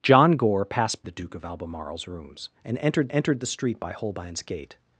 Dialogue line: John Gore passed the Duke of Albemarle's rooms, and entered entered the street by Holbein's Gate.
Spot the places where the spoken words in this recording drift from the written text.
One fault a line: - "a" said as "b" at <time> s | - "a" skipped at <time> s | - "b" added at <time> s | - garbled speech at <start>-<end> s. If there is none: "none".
none